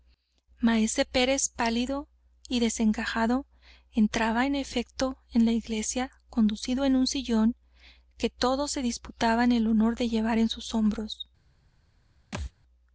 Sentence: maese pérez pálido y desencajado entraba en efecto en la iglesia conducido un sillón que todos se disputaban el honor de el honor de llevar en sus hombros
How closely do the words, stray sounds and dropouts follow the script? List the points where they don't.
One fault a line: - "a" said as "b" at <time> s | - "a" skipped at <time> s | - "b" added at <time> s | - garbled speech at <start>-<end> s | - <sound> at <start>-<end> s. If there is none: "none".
- "en" added at 6.8 s
- "el honor de" skipped at 10.1 s
- thud at 12.3-12.5 s